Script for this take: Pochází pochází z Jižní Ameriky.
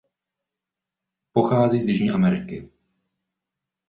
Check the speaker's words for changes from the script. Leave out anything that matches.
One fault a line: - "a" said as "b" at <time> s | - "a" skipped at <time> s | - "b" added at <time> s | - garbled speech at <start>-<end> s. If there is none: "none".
- "pochází" skipped at 1.8 s